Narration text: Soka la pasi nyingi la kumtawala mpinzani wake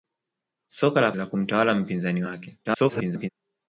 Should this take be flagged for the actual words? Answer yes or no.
yes